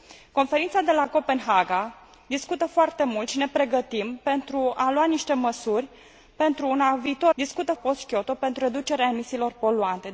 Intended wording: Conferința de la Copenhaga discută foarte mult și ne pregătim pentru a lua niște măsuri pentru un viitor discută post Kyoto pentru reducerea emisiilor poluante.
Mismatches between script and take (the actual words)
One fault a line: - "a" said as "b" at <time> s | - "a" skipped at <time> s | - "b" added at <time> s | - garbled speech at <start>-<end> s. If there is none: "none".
none